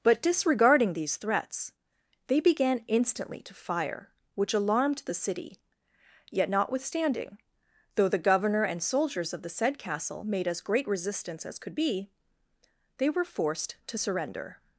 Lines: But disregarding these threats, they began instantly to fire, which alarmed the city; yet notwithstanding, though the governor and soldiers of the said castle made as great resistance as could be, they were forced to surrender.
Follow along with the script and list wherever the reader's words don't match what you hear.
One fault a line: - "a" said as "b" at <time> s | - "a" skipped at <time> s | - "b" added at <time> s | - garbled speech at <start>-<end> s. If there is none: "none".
none